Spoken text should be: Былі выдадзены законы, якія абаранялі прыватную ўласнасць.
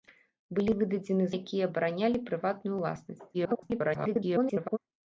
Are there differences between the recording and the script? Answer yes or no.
yes